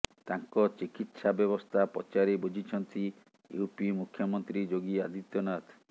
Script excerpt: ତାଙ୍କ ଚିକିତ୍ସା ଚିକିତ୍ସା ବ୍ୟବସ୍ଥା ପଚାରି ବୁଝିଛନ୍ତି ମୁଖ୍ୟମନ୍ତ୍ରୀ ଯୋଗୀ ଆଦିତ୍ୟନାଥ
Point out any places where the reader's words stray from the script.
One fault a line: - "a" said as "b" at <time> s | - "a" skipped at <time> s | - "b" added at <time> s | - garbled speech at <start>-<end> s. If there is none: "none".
- "ଚିକିତ୍ସା" skipped at 1.3 s
- "ୟୁପି" added at 3.6 s